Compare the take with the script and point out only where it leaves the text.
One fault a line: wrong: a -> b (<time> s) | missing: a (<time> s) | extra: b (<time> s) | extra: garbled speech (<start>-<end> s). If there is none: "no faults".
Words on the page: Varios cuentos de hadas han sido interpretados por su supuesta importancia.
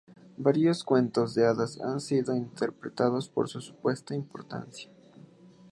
no faults